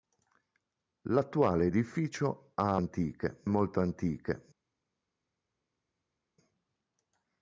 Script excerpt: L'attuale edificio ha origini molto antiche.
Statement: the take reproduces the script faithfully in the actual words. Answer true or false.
false